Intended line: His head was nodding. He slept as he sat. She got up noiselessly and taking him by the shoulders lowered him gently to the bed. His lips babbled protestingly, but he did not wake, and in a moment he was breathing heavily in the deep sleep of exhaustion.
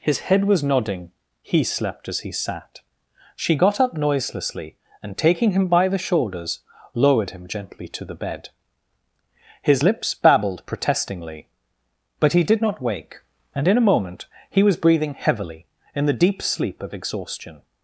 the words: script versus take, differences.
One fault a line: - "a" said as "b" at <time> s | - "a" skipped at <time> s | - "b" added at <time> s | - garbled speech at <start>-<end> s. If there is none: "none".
none